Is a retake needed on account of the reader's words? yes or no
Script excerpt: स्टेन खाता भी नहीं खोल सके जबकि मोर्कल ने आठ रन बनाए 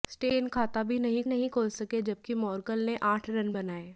yes